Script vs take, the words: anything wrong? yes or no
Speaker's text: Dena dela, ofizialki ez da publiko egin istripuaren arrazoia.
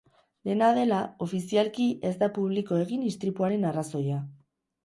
no